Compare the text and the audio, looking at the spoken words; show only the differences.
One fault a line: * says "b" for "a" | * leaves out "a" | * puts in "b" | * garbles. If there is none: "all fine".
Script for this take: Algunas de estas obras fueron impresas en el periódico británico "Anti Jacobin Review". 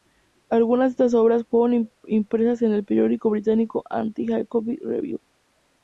all fine